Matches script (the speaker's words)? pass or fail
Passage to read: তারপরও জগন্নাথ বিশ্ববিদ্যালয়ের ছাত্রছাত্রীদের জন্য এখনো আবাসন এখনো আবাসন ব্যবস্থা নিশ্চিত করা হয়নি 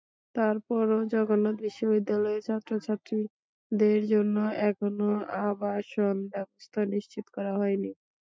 fail